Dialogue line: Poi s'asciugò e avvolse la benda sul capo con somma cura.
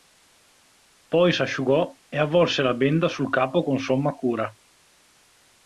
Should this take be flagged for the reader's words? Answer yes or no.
no